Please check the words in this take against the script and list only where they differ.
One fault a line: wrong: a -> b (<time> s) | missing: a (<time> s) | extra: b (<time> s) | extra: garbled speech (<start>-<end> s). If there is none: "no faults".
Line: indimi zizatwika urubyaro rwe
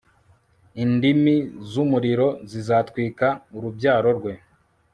extra: z'umuriro (1.7 s)